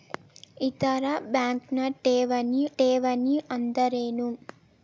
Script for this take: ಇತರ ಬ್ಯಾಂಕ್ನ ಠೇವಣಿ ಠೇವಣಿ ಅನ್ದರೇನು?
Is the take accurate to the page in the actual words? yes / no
yes